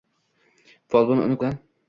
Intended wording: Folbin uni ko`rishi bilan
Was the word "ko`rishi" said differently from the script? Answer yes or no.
yes